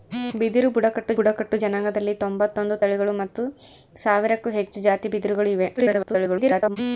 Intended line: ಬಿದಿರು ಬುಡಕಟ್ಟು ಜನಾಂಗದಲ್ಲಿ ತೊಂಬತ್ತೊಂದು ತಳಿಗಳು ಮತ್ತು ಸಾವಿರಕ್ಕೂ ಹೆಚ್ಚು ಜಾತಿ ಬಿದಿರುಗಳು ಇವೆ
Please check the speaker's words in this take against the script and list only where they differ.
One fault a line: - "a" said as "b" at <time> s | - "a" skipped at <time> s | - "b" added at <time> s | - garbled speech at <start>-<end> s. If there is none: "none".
- "ಬುಡಕಟ್ಟು" added at 1.2 s
- garbled speech at 5.8-6.8 s